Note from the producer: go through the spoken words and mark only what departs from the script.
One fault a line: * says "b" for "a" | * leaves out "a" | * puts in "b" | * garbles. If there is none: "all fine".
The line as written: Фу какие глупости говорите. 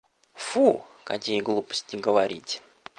all fine